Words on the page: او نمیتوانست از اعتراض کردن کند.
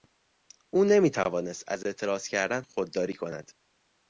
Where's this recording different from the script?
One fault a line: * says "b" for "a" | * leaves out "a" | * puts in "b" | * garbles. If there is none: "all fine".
* puts in "خودداری"